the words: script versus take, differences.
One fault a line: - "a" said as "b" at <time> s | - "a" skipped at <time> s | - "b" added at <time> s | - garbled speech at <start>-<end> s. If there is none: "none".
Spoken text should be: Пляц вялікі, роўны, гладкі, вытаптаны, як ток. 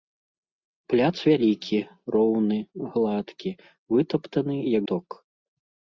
none